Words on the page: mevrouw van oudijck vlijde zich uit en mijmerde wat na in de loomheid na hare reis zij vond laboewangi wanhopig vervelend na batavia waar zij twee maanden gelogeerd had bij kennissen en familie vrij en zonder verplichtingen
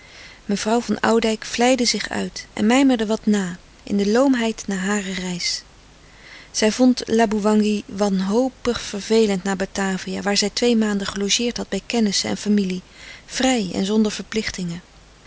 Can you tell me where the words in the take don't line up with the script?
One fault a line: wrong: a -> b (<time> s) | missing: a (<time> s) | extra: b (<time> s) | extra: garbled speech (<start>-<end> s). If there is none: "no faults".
no faults